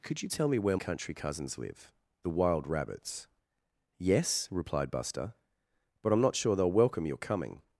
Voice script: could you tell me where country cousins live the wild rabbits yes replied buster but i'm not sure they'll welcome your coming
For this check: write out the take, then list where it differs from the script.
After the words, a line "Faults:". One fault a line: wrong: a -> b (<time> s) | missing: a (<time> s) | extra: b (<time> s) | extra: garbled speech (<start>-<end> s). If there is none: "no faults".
could you tell me where country cousins live the wild rabbits yes replied buster but i'm not sure they'll welcome your coming
Faults:
no faults